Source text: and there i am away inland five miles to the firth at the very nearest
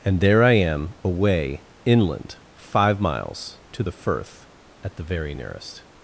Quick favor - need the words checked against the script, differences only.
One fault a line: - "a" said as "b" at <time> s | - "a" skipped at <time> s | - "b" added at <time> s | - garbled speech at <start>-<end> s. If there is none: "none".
none